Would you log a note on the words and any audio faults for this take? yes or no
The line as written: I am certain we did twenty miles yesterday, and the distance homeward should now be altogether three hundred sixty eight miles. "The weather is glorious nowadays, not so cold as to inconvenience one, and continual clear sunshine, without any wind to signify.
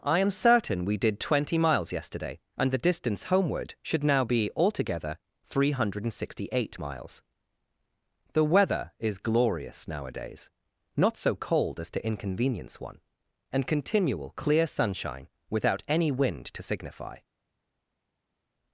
no